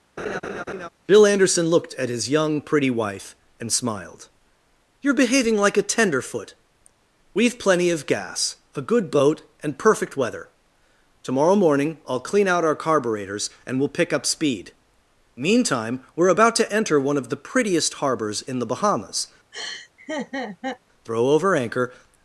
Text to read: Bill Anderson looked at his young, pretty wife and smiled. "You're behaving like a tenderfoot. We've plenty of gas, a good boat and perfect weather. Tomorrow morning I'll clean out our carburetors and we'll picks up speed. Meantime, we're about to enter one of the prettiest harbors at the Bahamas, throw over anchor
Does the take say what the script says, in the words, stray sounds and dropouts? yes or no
no